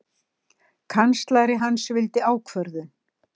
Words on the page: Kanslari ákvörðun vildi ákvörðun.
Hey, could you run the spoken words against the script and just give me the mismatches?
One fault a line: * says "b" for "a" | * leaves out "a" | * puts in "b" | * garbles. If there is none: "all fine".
* says "hans" for "ákvörðun"